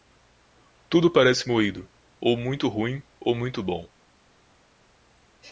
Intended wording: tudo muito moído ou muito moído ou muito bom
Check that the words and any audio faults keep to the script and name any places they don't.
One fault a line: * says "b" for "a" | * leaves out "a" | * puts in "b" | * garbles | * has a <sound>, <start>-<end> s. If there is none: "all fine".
* says "parece" for "muito"
* says "ruim" for "moído"